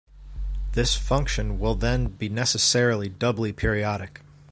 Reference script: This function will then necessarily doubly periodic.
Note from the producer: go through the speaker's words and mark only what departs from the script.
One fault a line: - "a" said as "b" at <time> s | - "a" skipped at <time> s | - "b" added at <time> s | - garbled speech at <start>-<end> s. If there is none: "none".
- "be" added at 2.2 s